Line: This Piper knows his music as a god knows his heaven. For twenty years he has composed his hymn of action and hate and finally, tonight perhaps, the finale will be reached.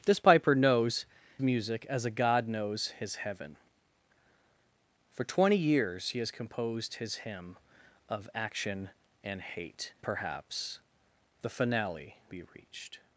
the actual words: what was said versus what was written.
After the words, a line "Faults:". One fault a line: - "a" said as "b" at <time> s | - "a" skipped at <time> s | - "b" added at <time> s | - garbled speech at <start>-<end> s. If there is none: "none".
This Piper knows music as a god knows his heaven. For twenty years he has composed his hymn of action and hate perhaps, the finale be reached.
Faults:
- "his" skipped at 1.0 s
- "and finally tonight" skipped at 9.9 s
- "will" skipped at 12.2 s